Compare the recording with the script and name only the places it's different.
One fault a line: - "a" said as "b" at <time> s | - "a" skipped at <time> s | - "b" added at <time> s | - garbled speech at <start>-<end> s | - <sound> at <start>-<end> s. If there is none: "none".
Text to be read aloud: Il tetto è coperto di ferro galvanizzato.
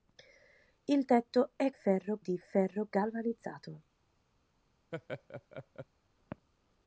- "coperto" said as "ferro" at 1.7 s
- laugh at 4.9-5.9 s